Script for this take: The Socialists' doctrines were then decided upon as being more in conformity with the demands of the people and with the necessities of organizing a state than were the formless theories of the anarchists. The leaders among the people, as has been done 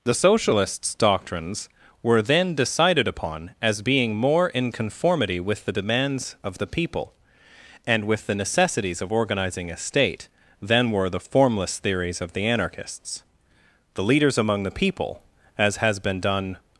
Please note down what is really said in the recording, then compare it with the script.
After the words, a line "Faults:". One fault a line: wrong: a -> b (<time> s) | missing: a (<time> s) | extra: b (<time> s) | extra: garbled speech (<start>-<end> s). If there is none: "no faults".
The Socialists' doctrines were then decided upon as being more in conformity with the demands of the people and with the necessities of organizing a state than were the formless theories of the anarchists. The leaders among the people, as has been done
Faults:
no faults